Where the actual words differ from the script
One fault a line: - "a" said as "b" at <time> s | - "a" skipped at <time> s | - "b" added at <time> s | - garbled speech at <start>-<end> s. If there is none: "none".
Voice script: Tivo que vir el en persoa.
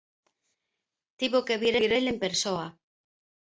- "vir" added at 1.8 s